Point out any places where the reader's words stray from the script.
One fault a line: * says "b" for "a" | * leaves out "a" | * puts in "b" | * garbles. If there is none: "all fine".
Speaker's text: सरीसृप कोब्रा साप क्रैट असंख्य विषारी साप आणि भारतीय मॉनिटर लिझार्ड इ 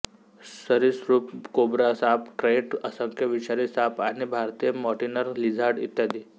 all fine